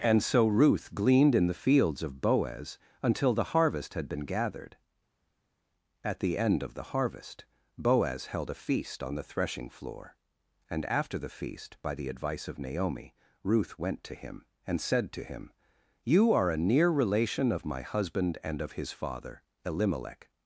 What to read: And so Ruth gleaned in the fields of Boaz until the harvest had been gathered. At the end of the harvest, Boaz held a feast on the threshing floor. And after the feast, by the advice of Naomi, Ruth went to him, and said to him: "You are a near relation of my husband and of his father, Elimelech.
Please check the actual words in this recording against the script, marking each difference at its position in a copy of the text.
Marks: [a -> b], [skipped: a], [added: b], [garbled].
And so Ruth gleaned in the fields of Boaz until the harvest had been gathered. At the end of the harvest, Boaz held a feast on the threshing floor. And after the feast, by the advice of Naomi, Ruth went to him, and said to him: "You are a near relation of my husband and of his father, Elimelech.